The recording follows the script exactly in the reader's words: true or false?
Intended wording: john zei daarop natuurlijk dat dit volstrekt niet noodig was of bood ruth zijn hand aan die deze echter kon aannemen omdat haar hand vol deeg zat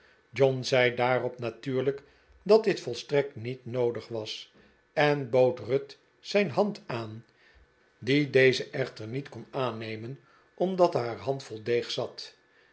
false